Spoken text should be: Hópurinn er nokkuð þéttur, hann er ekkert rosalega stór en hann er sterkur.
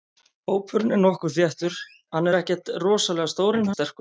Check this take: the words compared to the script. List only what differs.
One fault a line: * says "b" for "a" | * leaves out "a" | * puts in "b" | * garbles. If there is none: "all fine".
* leaves out "hann"